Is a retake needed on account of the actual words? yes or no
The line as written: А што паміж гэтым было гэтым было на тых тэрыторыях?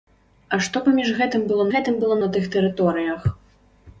no